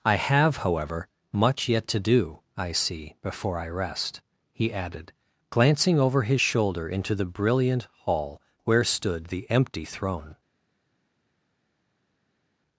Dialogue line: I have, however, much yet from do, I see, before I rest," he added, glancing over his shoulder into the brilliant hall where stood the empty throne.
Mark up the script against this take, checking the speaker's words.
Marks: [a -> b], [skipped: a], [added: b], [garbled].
I have, however, much yet [from -> to] do, I see, before I rest," he added, glancing over his shoulder into the brilliant hall where stood the empty throne.